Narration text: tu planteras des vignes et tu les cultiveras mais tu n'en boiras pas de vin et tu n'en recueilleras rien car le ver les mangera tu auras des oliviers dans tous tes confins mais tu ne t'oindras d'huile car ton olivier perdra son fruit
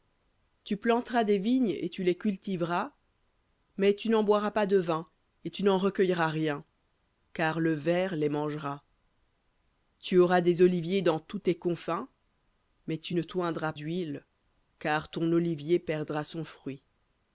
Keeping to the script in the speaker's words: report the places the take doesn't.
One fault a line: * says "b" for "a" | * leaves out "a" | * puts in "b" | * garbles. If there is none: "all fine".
all fine